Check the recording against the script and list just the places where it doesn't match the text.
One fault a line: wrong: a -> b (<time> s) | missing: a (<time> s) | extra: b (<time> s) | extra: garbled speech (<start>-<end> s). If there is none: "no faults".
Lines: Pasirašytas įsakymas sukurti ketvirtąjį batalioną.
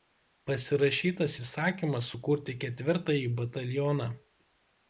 no faults